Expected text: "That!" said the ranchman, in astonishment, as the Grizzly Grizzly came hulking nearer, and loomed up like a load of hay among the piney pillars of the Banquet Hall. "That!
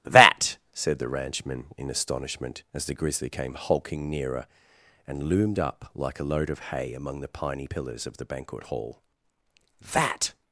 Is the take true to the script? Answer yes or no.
no